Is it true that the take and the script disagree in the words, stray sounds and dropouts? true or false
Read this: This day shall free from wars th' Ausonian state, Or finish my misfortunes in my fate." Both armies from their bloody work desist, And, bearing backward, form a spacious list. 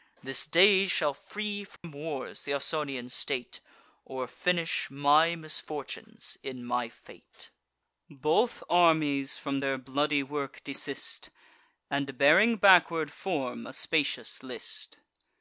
true